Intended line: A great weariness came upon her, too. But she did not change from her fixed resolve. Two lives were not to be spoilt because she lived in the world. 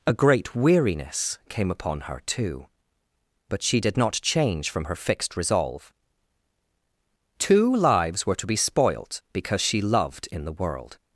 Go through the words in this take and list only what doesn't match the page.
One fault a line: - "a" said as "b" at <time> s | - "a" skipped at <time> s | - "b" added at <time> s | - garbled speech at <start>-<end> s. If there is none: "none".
- "not" skipped at 8.3 s
- "lived" said as "loved" at 9.8 s